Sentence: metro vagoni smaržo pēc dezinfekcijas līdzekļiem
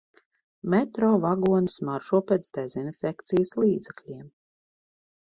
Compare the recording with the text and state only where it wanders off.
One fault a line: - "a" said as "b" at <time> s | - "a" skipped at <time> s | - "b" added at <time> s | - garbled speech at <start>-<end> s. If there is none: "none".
none